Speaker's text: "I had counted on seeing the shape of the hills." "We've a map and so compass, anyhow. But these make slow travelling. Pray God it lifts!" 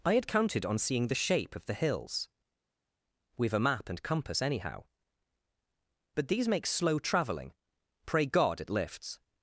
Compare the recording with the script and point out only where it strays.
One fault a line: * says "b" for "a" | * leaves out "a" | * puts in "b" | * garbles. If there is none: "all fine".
* leaves out "so"